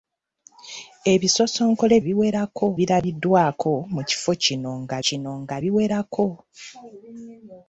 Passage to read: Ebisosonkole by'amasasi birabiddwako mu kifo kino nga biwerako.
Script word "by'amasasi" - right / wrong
wrong